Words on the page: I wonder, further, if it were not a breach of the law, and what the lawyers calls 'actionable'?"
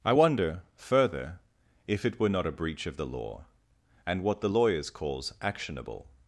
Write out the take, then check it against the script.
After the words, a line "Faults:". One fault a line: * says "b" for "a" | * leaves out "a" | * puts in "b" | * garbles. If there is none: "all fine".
I wonder, further, if it were not a breach of the law, and what the lawyers calls 'actionable'?"
Faults:
all fine